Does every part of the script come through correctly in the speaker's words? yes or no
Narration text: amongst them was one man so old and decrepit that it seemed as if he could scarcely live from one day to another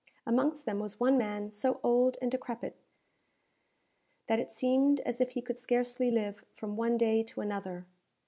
yes